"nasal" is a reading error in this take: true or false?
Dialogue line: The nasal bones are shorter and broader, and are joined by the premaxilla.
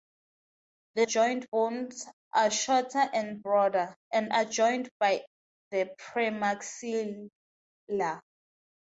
true